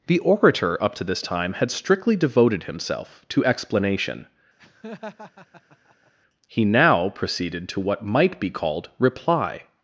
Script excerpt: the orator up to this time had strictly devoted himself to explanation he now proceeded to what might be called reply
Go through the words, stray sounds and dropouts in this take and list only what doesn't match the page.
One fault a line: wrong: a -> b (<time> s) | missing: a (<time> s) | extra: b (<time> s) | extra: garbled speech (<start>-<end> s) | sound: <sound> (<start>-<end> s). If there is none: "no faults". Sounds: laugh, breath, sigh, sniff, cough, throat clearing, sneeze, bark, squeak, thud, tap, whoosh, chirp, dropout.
sound: laugh (4.6-6.1 s)